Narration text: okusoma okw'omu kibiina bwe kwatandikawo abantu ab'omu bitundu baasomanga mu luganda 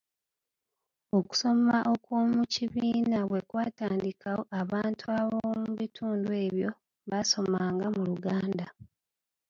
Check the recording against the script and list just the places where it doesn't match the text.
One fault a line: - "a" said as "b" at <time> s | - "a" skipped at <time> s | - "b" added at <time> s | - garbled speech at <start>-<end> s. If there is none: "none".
- "ebyo" added at 6.4 s